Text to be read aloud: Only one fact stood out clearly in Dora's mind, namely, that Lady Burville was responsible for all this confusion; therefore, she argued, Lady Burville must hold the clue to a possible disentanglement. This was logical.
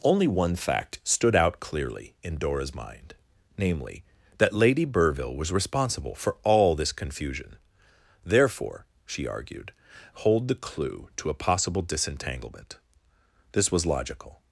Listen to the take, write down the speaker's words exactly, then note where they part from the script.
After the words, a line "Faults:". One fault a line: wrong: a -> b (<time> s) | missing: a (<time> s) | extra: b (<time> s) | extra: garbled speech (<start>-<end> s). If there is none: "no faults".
Only one fact stood out clearly in Dora's mind, namely, that Lady Burville was responsible for all this confusion; therefore, she argued, Hold the clue to a possible disentanglement. This was logical.
Faults:
missing: Lady Burville must (9.7 s)